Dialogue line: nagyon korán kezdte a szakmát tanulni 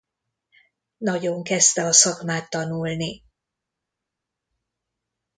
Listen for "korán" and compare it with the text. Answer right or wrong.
wrong